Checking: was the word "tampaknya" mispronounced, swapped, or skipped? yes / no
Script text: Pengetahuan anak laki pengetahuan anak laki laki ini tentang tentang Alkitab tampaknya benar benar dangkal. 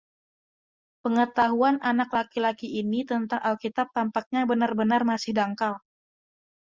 no